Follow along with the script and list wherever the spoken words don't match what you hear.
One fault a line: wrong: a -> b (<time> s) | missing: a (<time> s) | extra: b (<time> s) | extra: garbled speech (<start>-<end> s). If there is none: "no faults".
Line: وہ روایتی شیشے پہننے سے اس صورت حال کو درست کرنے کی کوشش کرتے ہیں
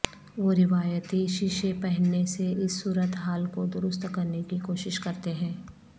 no faults